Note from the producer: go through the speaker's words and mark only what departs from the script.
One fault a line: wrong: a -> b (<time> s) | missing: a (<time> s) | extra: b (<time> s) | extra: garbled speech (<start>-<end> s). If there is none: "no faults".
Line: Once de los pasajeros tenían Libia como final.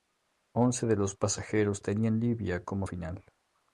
no faults